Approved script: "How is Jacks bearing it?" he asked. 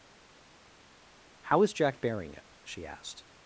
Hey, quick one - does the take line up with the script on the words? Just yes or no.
no